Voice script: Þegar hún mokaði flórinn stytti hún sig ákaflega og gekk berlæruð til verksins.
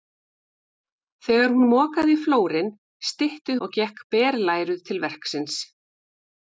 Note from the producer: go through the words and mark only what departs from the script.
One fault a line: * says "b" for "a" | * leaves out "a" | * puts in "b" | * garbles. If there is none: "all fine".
* leaves out "hún sig ákaflega"